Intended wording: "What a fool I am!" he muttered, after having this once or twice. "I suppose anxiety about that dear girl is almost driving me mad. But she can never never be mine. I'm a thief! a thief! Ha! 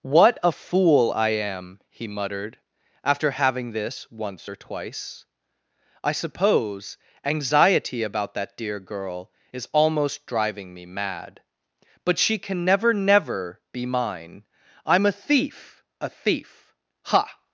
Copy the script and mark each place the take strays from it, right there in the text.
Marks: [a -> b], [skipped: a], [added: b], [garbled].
"What a fool I am!" he muttered, after having this once or twice. "I suppose anxiety about that dear girl is almost driving me mad. But she can never never be mine. I'm a thief! a thief! Ha!